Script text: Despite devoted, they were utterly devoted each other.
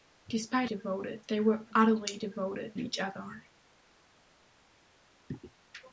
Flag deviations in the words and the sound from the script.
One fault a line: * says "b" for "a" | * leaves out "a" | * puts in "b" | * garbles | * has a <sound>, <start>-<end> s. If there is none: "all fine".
all fine